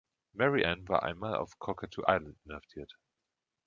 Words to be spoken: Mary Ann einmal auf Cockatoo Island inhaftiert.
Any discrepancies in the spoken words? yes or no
yes